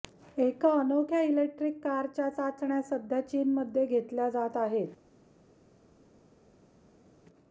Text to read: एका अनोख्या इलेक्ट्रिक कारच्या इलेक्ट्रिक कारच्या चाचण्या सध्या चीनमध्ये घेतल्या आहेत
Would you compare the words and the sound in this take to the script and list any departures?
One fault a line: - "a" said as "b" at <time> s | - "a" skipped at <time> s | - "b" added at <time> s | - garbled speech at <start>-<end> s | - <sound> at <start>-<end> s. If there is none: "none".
- "इलेक्ट्रिक कारच्या" skipped at 2.3 s
- "जात" added at 4.3 s